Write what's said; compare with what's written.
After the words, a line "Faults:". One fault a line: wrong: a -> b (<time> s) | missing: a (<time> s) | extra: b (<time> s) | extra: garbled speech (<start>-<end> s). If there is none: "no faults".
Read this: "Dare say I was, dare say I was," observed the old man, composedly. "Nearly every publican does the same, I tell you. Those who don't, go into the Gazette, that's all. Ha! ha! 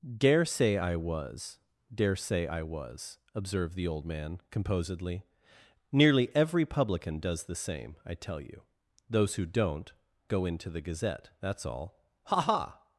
"Dare say I was, dare say I was," observed the old man, composedly. "Nearly every publican does the same, I tell you. Those who don't, go into the Gazette, that's all. Ha! ha!
Faults:
no faults